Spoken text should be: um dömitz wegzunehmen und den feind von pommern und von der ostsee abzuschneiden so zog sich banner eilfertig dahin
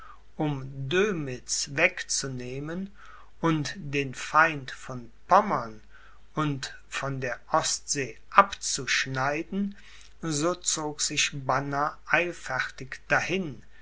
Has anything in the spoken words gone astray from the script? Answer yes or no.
no